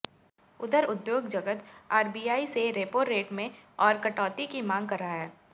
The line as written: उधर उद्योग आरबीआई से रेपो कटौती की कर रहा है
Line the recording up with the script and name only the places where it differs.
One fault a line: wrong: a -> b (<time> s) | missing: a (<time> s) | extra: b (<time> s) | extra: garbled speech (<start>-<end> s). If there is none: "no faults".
extra: जगत (1.3 s)
extra: रेट में और (3.0 s)
extra: मांग (4.6 s)